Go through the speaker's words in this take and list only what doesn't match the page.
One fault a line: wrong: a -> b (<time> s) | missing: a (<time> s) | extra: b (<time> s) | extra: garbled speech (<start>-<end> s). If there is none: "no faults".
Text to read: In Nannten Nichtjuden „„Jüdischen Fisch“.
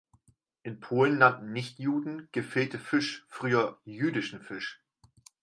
extra: Polen (0.8 s)
extra: Gefilte Fisch früher (2.3 s)